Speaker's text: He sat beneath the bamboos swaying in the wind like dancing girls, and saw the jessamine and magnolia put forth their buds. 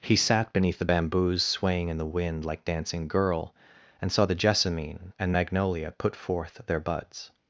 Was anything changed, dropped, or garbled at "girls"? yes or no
yes